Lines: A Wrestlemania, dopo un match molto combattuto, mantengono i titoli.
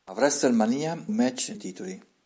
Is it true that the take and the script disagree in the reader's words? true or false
true